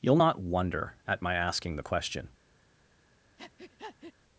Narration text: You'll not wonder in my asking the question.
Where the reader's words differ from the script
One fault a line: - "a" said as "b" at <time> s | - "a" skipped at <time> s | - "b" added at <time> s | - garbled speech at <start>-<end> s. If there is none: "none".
- "in" said as "at" at 1.1 s